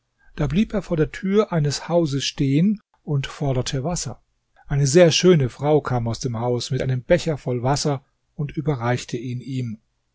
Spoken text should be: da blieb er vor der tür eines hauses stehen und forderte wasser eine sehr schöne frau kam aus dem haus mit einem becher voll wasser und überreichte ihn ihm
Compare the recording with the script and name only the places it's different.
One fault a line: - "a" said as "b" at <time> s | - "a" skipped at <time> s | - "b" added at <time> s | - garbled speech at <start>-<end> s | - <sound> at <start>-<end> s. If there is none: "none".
none